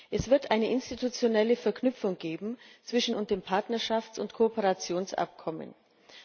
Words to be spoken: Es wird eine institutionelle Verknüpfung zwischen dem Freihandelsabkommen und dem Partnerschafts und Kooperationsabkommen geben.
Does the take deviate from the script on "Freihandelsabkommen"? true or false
true